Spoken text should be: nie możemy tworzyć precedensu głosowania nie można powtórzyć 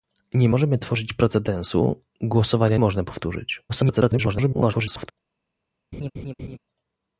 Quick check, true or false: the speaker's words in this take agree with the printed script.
false